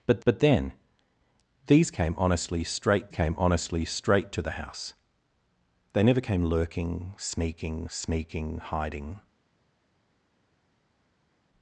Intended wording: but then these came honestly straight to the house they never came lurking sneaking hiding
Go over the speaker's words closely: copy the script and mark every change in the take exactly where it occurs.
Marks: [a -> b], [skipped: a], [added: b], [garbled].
but [added: but] then these came honestly straight [added: came honestly straight] to the house they never came lurking sneaking [added: sneaking] hiding